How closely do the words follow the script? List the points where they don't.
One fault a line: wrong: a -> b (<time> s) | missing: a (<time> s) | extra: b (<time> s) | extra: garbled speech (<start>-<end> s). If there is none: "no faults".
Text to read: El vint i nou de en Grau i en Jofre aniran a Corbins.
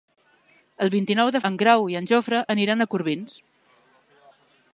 no faults